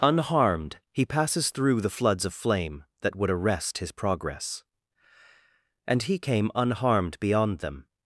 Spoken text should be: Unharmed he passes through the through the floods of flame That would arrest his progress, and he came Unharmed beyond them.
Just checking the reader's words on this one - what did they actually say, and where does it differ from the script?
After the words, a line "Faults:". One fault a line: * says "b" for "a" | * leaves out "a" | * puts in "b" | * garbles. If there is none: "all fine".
Unharmed he passes through the floods of flame That would arrest his progress, and he came Unharmed beyond them.
Faults:
* leaves out "through the"